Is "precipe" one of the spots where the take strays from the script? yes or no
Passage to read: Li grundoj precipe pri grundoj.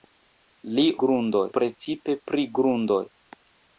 no